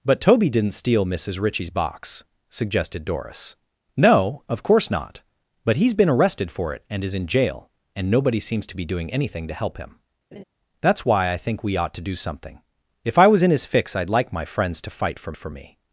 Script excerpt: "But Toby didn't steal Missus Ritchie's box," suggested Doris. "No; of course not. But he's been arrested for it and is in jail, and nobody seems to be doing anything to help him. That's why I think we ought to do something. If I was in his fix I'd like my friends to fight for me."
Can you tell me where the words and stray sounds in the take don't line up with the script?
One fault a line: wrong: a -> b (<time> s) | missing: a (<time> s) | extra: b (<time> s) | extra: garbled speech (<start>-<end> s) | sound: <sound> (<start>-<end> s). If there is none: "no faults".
sound: laugh (10.3-10.4 s)
extra: for (15.4 s)